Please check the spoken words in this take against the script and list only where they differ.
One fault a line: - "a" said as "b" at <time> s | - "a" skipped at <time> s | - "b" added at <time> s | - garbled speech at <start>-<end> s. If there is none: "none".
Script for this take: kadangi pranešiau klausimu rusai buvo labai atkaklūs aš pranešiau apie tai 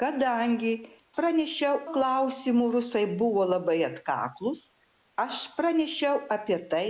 none